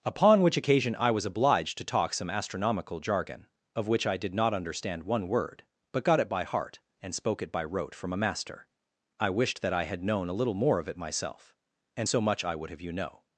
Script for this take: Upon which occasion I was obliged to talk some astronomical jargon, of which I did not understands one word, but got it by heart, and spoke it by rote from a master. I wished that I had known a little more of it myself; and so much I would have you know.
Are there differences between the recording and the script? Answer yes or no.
yes